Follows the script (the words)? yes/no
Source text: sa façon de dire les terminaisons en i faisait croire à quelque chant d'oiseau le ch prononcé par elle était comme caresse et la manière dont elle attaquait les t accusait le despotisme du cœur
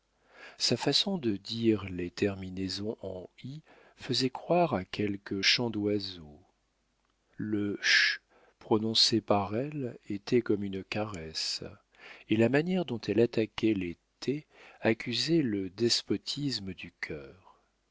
no